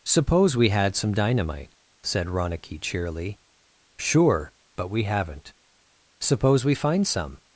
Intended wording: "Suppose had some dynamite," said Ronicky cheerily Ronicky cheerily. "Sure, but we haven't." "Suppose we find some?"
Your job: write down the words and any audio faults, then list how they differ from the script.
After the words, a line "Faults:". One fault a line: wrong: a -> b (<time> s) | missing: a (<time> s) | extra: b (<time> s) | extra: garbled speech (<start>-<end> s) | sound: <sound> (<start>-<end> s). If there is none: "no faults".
"Suppose we had some dynamite," said Ronicky cheerily. "Sure, but we haven't." "Suppose we find some?"
Faults:
extra: we (0.6 s)
missing: Ronicky cheerily (3.4 s)